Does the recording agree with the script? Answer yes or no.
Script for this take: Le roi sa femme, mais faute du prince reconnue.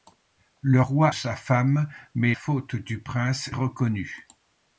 yes